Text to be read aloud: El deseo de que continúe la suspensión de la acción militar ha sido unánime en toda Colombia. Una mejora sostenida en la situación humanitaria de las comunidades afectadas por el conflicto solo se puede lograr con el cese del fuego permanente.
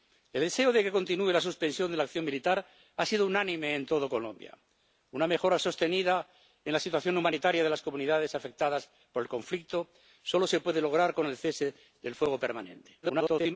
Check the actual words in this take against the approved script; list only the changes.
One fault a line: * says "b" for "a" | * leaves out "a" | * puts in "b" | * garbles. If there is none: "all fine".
* garbles